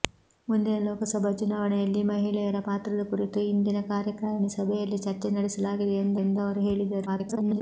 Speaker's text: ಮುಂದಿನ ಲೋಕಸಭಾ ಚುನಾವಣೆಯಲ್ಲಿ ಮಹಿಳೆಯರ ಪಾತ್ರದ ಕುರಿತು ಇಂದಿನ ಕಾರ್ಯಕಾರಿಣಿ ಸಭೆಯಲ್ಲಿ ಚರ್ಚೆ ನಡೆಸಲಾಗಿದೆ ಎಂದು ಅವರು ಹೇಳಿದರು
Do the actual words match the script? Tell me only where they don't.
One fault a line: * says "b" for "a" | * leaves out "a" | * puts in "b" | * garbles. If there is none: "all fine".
* puts in "ಎಂದು"
* garbles